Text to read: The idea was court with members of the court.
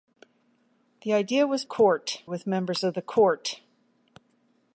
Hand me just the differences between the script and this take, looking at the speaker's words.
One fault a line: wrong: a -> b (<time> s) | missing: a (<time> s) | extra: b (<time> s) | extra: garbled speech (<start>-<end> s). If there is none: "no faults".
no faults